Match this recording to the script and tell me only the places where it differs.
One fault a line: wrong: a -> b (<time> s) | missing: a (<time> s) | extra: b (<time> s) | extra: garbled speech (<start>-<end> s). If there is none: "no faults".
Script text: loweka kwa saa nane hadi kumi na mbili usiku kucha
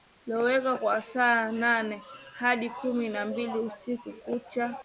no faults